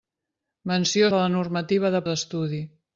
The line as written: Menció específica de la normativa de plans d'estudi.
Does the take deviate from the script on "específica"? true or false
true